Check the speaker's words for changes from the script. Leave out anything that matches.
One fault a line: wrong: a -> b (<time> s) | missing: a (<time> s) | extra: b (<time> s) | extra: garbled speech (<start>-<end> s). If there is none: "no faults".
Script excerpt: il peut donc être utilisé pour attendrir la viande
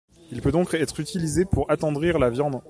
no faults